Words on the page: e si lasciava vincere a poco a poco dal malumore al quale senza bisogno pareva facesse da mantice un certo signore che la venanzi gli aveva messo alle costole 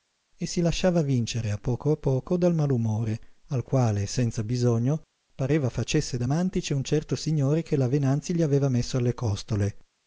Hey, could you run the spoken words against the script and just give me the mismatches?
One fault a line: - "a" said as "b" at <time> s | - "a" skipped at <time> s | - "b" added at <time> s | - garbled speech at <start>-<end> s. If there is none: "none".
none